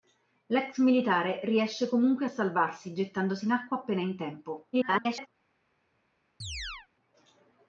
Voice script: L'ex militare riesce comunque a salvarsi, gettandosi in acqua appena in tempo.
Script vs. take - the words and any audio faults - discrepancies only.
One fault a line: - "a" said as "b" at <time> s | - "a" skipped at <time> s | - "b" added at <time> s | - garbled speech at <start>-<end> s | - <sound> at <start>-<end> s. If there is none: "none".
- garbled speech at 4.7-5.3 s
- chirp at 6.4-6.9 s